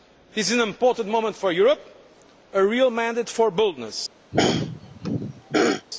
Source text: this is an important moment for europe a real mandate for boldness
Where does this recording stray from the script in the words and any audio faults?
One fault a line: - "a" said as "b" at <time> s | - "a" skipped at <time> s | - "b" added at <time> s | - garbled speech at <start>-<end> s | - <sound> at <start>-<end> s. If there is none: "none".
- throat clearing at 4.3-5.9 s